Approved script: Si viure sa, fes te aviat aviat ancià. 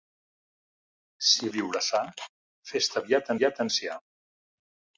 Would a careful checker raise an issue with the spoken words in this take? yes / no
no